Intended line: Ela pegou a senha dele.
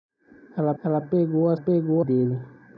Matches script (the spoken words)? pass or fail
fail